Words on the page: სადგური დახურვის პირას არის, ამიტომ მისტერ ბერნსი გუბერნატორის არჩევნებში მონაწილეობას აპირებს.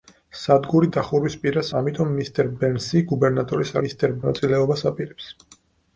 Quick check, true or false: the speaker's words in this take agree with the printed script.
false